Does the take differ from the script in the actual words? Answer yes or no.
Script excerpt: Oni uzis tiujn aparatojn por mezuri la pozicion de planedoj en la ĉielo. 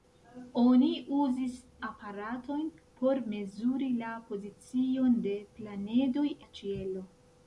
yes